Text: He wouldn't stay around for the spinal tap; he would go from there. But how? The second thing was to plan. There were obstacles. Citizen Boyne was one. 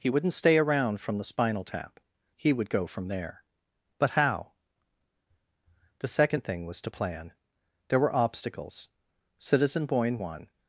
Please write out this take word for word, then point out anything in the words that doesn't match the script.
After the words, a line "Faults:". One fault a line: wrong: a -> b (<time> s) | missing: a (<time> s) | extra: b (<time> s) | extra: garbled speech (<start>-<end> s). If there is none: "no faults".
He wouldn't stay around from the spinal tap; he would go from there. But how? The second thing was to plan. There were obstacles. Citizen Boyne one.
Faults:
wrong: for -> from (1.0 s)
missing: was (10.2 s)